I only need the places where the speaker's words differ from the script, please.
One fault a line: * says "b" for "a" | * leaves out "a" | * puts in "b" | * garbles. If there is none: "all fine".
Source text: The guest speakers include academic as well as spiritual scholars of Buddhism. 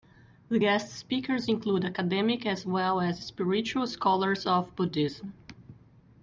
all fine